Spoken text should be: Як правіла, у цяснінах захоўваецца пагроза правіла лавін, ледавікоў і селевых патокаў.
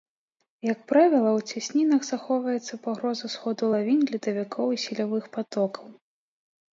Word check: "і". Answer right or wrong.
right